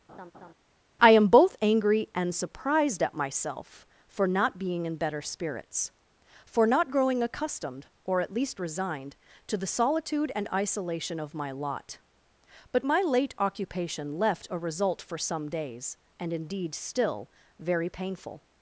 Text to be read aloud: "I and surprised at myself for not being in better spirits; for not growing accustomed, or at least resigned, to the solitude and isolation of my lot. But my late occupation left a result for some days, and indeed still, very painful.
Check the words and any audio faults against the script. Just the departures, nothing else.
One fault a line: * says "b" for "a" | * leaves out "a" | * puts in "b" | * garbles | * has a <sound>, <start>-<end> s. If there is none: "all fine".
* has a laugh, 0.1-0.5 s
* puts in "am both angry"